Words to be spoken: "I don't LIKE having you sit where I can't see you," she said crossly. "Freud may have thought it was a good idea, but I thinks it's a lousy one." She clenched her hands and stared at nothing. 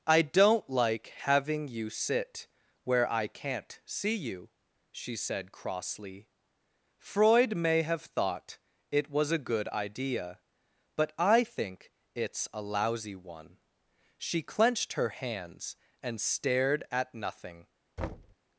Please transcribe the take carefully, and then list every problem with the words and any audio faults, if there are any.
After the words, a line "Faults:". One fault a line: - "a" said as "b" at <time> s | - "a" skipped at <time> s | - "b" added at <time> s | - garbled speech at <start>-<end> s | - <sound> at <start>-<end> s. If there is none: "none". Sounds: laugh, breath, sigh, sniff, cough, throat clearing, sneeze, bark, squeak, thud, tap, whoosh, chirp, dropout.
"I don't LIKE having you sit where I can't see you," she said crossly. "Freud may have thought it was a good idea, but I think it's a lousy one." She clenched her hands and stared at nothing.
Faults:
- "thinks" said as "think" at 11.4 s
- thud at 18.0-18.4 s